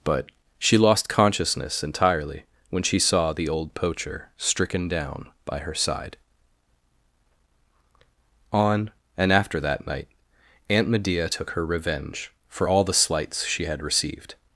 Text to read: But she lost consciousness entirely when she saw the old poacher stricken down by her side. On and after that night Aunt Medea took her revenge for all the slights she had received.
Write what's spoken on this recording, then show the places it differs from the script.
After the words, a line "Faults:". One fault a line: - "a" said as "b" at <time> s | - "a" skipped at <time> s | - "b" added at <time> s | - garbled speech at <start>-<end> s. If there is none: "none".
But she lost consciousness entirely when she saw the old poacher stricken down by her side. On and after that night Aunt Medea took her revenge for all the slights she had received.
Faults:
none